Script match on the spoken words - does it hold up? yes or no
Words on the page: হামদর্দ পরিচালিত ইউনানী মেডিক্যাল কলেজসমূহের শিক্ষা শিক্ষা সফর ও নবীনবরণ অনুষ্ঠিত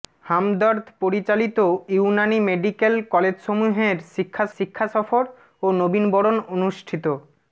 yes